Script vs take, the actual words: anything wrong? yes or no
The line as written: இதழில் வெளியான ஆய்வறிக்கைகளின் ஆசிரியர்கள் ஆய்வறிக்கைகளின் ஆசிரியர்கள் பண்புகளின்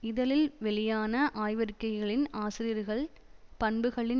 yes